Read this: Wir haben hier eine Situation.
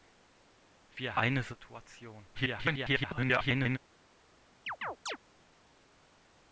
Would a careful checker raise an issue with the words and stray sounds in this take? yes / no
yes